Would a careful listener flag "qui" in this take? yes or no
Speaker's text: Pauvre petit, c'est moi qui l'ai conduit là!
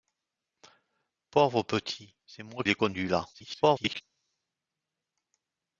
yes